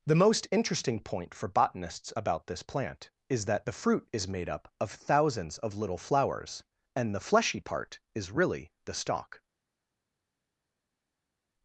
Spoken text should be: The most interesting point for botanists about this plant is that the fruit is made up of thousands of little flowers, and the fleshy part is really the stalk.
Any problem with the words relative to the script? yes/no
no